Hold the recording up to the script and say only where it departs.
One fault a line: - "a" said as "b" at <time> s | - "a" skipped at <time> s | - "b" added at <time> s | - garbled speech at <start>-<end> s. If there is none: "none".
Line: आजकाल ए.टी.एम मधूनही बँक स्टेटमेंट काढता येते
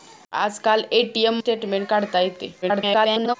- "मधूनही बँक" skipped at 1.4 s
- garbled speech at 2.6-3.4 s